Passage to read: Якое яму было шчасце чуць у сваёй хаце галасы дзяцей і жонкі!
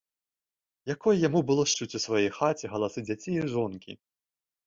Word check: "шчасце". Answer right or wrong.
wrong